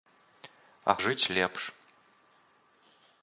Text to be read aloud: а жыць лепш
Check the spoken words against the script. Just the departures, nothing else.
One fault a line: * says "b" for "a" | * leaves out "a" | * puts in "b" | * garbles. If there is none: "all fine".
all fine